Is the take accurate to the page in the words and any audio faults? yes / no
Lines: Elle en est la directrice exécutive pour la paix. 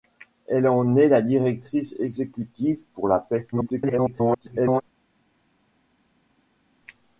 no